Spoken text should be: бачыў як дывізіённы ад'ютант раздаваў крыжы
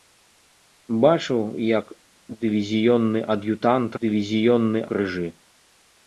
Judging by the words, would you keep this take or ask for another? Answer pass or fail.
fail